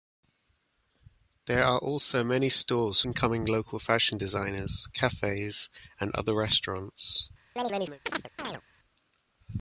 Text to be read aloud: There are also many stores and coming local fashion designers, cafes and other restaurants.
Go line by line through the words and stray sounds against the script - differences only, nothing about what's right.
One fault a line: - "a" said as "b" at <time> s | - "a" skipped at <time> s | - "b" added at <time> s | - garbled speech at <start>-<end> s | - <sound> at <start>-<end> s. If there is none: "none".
- chirp at 7.6-8.6 s